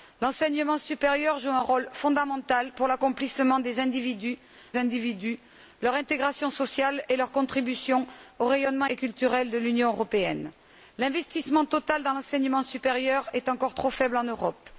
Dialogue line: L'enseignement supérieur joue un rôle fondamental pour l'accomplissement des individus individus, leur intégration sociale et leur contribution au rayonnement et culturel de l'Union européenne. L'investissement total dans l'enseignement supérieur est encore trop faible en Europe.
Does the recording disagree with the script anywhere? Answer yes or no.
no